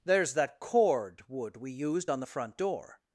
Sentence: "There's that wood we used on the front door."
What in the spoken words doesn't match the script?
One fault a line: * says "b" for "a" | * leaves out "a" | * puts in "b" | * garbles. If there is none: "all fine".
* puts in "cord"